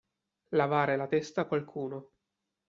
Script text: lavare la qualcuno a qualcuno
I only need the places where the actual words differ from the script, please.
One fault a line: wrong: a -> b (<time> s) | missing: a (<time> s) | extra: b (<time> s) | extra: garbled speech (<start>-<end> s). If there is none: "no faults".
wrong: qualcuno -> testa (1.1 s)